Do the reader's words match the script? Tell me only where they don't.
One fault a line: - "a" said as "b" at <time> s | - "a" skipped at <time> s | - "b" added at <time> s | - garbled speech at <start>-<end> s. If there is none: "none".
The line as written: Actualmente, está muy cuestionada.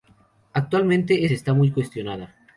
none